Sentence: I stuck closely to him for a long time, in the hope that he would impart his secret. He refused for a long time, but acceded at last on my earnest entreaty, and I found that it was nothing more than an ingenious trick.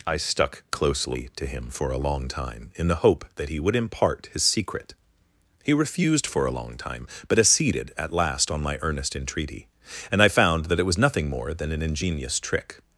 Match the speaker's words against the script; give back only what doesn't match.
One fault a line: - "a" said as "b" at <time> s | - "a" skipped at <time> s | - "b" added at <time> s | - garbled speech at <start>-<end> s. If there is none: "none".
none